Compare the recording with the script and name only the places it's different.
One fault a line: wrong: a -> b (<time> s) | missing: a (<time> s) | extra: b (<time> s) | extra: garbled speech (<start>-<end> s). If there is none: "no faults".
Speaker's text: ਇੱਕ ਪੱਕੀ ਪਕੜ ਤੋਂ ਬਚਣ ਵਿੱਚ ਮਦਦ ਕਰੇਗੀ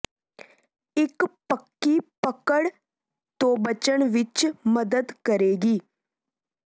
no faults